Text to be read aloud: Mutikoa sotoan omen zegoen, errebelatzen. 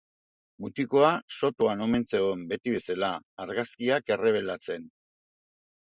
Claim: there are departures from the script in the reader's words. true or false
true